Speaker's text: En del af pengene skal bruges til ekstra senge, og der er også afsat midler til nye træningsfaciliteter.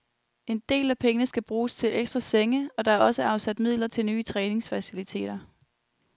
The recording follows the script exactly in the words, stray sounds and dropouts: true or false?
true